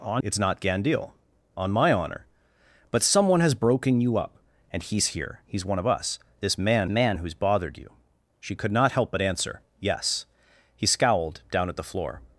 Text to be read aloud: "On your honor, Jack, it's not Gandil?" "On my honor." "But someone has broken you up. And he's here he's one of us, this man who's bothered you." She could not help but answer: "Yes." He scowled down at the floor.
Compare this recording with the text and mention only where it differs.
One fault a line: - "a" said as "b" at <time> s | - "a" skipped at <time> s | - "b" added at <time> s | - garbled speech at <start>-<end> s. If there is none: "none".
- "your honor Jack" skipped at 0.2 s
- "man" added at 6.9 s